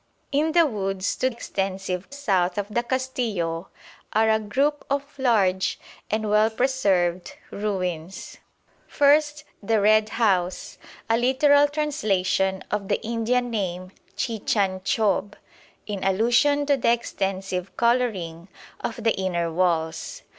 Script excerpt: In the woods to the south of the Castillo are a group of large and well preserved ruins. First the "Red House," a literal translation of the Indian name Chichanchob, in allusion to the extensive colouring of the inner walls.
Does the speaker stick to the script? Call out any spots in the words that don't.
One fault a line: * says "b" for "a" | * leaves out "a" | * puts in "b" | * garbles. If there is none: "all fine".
* says "extensive" for "the"